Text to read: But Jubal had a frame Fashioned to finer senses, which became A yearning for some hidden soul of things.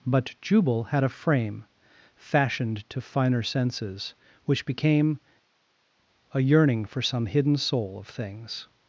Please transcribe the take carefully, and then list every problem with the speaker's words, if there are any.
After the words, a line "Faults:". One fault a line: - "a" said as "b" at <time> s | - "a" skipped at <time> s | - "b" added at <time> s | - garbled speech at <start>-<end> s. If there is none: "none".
But Jubal had a frame Fashioned to finer senses, which became A yearning for some hidden soul of things.
Faults:
none